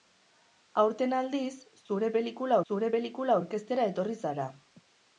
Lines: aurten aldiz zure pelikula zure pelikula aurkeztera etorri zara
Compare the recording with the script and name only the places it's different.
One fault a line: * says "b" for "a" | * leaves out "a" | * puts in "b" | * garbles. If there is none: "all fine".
all fine